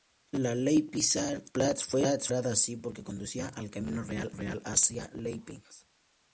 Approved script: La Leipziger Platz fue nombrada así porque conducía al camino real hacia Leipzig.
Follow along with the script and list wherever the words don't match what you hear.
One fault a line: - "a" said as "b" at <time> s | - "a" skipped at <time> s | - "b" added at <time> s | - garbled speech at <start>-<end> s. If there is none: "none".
- "real" added at 4.3 s